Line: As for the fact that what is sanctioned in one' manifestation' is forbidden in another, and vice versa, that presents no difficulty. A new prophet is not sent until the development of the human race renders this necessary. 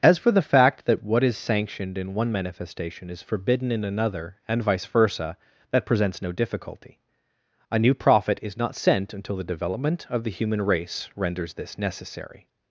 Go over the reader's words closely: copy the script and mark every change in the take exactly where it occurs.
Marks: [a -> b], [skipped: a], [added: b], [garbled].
As for the fact that what is sanctioned in one' manifestation' is forbidden in another, and vice versa, that presents no difficulty. A new prophet is not sent until the development of the human race renders this necessary.